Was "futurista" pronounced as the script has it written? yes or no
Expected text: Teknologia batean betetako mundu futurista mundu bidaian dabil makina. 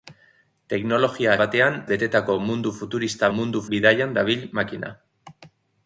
yes